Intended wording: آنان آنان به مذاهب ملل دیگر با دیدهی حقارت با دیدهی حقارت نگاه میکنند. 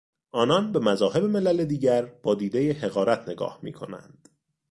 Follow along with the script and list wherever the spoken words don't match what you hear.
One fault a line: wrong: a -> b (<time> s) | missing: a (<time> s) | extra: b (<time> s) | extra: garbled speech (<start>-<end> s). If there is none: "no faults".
missing: آنان (0.8 s)
missing: با دیدهی حقارت (3.3 s)